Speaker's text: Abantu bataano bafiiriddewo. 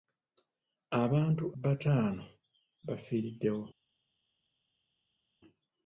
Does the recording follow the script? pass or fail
pass